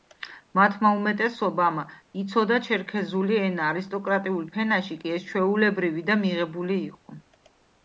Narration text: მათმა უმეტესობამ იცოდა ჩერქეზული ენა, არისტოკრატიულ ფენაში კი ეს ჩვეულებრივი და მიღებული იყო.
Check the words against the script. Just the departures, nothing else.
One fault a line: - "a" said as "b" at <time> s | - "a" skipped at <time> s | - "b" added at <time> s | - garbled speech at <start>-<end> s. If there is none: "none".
none